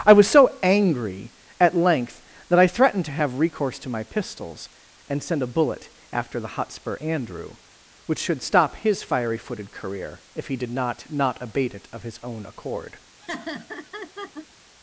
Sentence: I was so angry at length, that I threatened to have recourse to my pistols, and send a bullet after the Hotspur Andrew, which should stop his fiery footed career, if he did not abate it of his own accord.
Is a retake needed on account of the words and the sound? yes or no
yes